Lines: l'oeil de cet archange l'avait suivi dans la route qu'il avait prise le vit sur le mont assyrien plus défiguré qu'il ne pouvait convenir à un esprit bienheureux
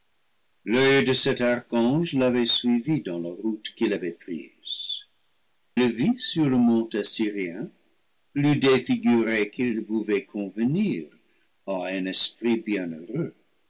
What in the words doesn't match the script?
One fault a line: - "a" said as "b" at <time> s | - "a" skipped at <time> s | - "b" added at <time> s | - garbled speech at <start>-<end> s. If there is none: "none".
none